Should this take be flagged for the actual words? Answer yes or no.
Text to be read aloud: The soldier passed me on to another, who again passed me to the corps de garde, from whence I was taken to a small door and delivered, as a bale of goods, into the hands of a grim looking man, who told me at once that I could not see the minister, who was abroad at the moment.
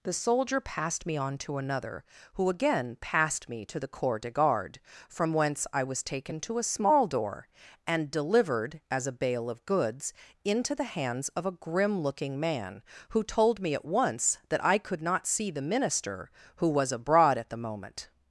no